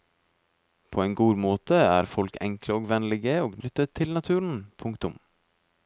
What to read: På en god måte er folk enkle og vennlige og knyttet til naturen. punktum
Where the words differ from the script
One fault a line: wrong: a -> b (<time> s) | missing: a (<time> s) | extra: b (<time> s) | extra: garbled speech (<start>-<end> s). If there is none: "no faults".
no faults